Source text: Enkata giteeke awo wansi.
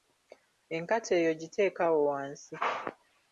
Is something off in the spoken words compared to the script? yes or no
yes